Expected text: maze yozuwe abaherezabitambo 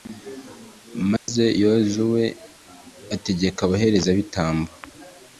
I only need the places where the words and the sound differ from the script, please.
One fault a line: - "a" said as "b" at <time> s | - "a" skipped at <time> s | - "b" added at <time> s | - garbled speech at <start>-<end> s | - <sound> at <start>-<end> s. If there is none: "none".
- dropout at 1.2-1.3 s
- "ategeka" added at 3.1 s